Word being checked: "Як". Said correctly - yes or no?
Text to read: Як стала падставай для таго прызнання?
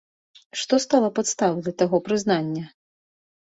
no